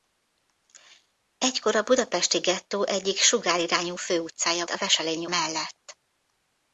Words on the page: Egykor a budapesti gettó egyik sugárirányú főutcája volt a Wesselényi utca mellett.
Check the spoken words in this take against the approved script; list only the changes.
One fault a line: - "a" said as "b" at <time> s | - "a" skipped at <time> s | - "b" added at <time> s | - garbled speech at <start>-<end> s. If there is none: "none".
- "volt" skipped at 4.7 s
- "utca" skipped at 5.3 s